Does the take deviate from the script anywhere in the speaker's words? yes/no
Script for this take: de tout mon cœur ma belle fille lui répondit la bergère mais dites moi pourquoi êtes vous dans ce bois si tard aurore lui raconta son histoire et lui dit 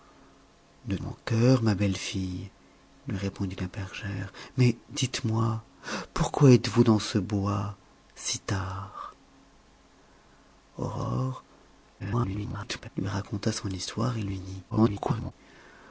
yes